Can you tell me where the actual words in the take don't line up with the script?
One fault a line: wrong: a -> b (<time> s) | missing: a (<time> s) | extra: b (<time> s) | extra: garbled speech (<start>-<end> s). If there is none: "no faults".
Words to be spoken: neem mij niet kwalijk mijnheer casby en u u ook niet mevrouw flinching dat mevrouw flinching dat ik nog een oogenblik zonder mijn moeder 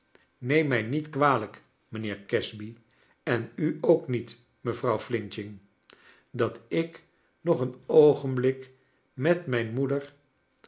missing: u (3.8 s)
missing: mevrouw flinching dat (6.6 s)
wrong: zonder -> met (9.1 s)